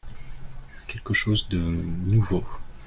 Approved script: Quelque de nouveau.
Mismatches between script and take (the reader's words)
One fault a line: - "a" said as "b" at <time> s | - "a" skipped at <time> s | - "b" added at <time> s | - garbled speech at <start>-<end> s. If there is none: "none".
- "chose" added at 1.1 s